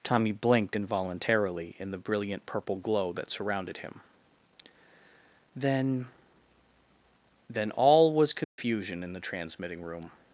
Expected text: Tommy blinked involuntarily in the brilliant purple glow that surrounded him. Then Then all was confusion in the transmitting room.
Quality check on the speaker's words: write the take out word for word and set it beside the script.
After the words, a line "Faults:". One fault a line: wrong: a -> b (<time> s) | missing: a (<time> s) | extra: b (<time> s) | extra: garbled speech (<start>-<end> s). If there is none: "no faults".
Tommy blinked involuntarily in the brilliant purple glow that surrounded him. Then Then all was confusion in the transmitting room.
Faults:
no faults